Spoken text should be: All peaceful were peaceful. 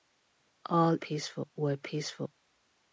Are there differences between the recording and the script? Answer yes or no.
no